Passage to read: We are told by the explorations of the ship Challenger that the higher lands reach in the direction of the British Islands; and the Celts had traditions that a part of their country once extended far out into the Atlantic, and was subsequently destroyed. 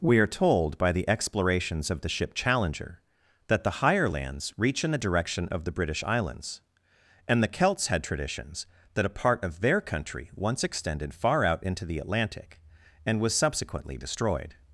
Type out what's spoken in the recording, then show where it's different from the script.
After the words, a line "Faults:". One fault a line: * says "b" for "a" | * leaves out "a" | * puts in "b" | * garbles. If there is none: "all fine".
We are told by the explorations of the ship Challenger that the higher lands reach in the direction of the British Islands; and the Celts had traditions that a part of their country once extended far out into the Atlantic, and was subsequently destroyed.
Faults:
all fine